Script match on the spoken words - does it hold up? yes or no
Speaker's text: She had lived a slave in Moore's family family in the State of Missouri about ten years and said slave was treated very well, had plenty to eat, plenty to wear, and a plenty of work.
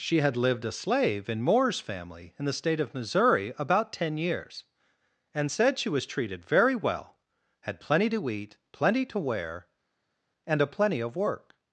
no